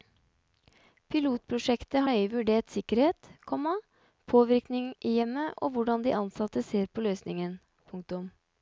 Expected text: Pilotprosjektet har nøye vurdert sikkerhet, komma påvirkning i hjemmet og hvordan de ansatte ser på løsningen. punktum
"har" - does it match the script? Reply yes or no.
no